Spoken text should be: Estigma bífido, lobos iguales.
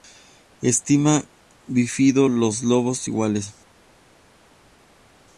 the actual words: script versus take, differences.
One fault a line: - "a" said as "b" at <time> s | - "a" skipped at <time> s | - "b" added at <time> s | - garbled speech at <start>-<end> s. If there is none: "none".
- "los" added at 2.3 s